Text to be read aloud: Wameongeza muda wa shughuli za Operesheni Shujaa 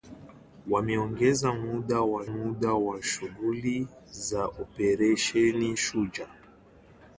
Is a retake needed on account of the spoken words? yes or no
yes